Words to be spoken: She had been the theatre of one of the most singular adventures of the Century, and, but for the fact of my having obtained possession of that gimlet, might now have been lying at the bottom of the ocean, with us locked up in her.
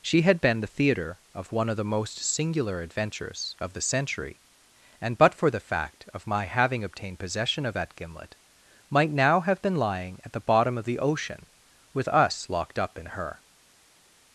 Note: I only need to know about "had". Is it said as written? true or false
true